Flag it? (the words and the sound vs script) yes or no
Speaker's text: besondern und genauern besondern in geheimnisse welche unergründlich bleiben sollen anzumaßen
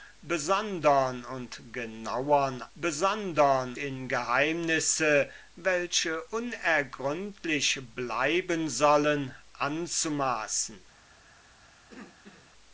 yes